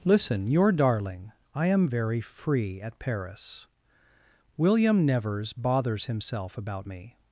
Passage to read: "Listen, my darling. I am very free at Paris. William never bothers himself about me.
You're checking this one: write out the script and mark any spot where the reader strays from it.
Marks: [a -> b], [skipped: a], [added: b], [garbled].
"Listen, [my -> your] darling. I am very free at Paris. William [never -> nevers] bothers himself about me.